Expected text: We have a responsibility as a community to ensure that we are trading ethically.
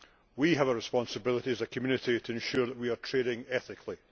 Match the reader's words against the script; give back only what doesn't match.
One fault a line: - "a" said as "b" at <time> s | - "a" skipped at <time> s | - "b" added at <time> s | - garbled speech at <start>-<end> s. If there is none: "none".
none